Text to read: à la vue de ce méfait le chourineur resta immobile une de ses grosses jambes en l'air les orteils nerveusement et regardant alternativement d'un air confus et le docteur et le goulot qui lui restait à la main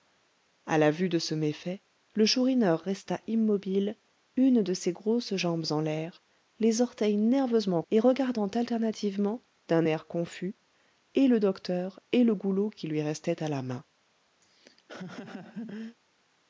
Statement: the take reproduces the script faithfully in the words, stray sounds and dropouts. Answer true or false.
false